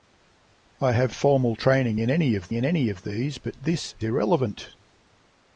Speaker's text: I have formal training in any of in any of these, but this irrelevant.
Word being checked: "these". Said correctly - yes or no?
yes